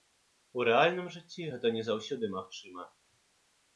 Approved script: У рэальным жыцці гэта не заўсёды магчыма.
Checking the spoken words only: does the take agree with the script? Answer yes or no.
yes